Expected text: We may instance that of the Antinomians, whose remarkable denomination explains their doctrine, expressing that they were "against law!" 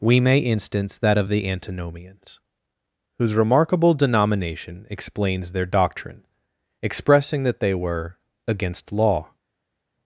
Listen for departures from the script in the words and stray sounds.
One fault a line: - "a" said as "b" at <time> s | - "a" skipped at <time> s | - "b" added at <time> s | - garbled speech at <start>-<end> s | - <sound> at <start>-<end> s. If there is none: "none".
none